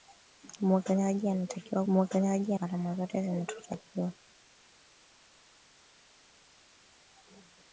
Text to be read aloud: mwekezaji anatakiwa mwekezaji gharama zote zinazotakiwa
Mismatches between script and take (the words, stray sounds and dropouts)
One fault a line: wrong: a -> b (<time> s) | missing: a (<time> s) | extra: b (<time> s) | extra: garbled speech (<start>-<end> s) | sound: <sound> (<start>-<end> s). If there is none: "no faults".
no faults